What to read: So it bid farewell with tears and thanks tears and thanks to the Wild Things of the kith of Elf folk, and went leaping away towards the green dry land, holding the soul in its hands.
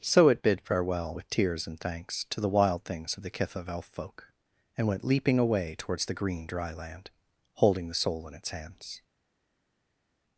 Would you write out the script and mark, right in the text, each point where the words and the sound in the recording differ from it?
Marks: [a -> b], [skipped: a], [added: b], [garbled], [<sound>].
So it bid farewell with tears and thanks [skipped: tears and thanks] to the Wild Things of the kith of Elf folk, and went leaping away towards the green dry land, holding the soul in its hands.